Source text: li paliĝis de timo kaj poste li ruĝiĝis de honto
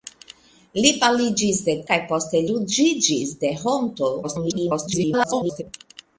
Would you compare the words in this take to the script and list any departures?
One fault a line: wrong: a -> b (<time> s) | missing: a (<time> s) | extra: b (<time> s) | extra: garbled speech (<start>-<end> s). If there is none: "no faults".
missing: timo (1.8 s)
missing: li (2.5 s)
extra: garbled speech (4.2-5.6 s)